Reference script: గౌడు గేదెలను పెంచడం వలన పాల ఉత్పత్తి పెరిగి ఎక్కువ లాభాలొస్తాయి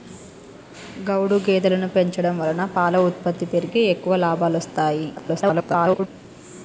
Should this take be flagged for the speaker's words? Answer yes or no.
yes